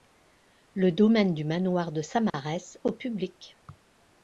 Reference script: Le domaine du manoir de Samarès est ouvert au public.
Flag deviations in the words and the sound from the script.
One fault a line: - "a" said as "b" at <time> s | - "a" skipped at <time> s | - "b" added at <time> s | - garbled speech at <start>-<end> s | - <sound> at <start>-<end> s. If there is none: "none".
- "est ouvert" skipped at 2.8 s